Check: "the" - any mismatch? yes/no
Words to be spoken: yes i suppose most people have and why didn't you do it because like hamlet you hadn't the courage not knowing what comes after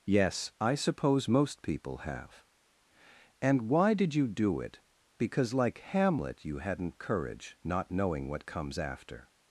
yes